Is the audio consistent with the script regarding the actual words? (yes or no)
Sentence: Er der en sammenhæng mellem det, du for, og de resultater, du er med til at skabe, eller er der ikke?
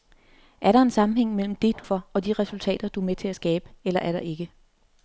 yes